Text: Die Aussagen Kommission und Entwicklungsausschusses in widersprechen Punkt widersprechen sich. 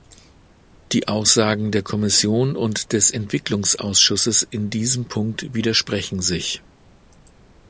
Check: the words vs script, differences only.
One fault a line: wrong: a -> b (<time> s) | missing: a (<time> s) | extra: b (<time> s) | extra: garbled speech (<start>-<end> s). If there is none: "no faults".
extra: der (1.7 s)
extra: des (2.9 s)
wrong: widersprechen -> diesem (4.7 s)